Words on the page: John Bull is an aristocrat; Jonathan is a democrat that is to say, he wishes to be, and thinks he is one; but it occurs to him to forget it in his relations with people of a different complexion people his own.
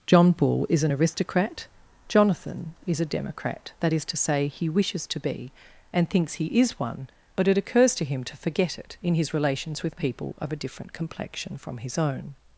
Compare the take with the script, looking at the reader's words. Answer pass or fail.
fail